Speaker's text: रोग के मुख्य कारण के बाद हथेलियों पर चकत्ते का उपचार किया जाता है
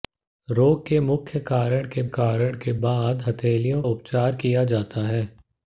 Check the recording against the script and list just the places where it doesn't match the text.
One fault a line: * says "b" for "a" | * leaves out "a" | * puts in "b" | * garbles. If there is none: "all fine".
* puts in "कारण के"
* leaves out "पर चकत्ते का"